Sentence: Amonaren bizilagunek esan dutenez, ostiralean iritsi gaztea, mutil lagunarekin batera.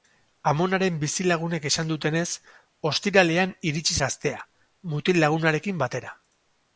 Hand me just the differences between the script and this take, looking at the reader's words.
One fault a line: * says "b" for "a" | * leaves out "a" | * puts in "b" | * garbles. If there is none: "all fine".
all fine